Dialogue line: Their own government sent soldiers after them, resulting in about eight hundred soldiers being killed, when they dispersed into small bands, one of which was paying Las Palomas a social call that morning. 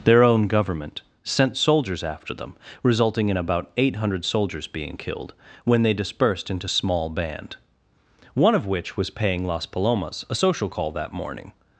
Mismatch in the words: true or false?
true